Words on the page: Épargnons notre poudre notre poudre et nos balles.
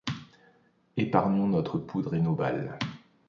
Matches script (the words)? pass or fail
fail